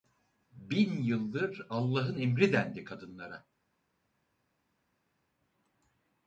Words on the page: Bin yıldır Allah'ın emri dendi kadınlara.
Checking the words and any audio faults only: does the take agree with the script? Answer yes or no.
yes